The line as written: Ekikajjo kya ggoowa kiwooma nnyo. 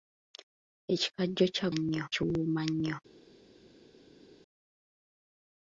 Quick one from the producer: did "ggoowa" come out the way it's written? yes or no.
no